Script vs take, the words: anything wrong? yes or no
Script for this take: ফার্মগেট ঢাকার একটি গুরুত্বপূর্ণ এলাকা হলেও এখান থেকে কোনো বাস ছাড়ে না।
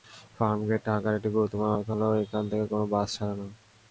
no